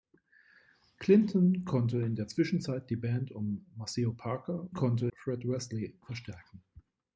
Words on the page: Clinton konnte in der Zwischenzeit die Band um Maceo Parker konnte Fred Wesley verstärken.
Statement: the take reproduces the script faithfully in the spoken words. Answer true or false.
true